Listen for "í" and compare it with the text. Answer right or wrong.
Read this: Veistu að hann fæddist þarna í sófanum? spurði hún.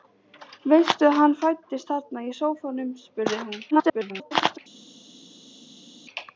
right